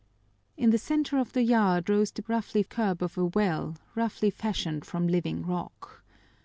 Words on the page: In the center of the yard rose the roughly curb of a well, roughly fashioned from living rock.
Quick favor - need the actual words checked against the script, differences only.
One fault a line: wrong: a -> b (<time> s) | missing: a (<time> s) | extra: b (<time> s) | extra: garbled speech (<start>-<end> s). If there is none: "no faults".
no faults